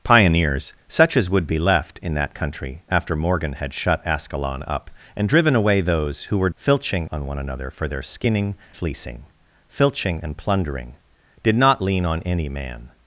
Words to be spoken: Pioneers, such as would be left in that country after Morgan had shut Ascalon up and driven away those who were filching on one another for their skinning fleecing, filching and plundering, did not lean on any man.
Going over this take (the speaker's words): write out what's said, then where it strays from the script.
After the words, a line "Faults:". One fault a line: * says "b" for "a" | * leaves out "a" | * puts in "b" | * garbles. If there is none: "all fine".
Pioneers, such as would be left in that country after Morgan had shut Ascalon up and driven away those who were filching on one another for their skinning fleecing, filching and plundering, did not lean on any man.
Faults:
all fine